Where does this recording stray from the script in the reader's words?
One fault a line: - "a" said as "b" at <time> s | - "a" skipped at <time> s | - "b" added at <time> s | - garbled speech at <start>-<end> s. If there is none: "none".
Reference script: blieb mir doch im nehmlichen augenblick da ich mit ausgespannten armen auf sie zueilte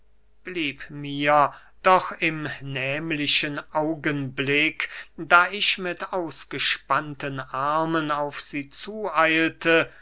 none